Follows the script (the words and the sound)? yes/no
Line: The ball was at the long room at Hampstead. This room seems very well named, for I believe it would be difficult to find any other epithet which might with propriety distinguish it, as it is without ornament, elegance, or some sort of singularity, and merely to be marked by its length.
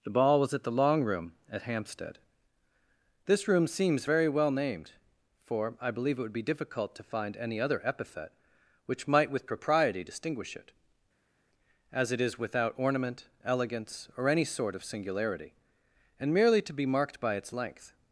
no